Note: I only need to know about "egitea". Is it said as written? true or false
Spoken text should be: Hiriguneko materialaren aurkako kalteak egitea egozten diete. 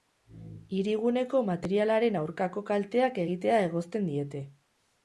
true